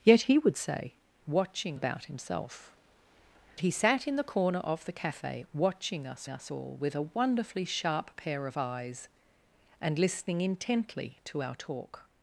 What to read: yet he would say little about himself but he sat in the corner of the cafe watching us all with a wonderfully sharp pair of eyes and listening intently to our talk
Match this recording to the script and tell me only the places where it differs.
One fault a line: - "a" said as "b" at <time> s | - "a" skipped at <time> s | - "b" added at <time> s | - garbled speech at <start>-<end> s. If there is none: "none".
- "little" said as "watching" at 1.3 s
- "but" skipped at 2.7 s
- "us" added at 6.3 s